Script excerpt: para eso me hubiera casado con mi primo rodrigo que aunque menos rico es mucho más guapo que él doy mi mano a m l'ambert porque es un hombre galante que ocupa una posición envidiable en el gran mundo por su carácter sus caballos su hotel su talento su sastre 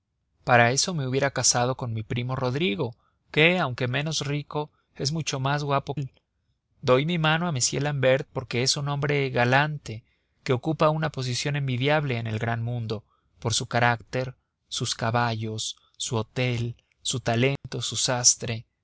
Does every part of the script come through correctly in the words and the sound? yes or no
no